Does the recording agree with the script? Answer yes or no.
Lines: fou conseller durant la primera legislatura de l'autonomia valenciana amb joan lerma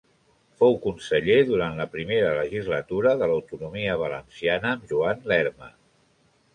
yes